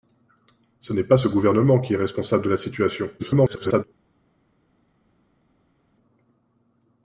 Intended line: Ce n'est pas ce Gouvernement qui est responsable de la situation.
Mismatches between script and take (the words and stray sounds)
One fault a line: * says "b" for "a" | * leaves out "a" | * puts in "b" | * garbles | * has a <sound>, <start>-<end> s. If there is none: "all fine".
* garbles